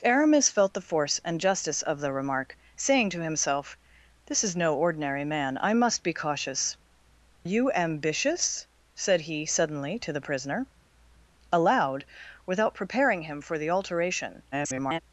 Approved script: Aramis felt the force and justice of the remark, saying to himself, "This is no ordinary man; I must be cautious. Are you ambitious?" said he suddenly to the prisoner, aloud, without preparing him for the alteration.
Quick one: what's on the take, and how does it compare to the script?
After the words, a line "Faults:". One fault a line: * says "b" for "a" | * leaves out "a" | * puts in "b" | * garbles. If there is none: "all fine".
Aramis felt the force and justice of the remark, saying to himself, "This is no ordinary man; I must be cautious. You ambitious?" said he suddenly to the prisoner, aloud, without preparing him for the alteration. [garbled]
Faults:
* leaves out "Are"
* garbles